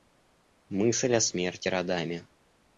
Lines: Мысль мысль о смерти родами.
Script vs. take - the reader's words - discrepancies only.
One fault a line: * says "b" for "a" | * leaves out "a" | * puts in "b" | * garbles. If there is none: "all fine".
* leaves out "мысль"